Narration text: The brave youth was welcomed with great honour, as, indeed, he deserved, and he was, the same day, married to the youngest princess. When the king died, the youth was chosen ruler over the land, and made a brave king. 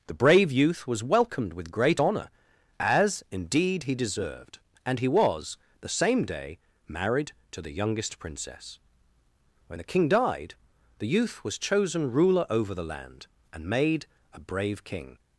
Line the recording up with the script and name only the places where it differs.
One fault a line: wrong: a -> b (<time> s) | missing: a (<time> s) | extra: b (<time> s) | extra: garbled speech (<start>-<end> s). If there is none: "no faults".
no faults